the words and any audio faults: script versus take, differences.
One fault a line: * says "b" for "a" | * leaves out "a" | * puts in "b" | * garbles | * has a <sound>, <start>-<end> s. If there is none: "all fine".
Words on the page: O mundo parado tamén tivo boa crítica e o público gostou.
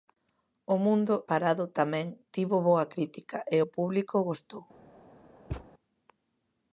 * has a thud, 5.5-5.7 s